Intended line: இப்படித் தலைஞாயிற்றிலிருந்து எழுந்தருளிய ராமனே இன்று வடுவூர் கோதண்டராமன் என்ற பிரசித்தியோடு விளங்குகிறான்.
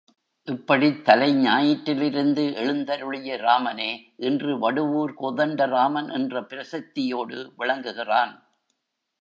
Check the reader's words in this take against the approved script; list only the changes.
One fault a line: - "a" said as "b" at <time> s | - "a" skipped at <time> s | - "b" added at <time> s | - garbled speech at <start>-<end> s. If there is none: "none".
none